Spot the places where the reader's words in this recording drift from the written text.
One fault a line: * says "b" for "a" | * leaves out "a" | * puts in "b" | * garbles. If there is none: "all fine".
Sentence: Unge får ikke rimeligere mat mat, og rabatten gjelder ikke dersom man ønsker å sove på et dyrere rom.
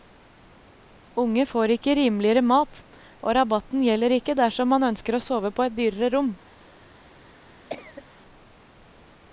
* leaves out "mat"